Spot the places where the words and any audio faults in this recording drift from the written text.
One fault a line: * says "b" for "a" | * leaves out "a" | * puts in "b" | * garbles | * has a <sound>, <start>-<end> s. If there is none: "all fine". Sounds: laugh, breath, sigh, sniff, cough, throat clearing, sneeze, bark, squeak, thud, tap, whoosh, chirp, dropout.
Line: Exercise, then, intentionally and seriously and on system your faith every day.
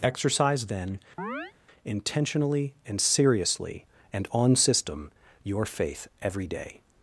* has a chirp, 1.2-1.5 s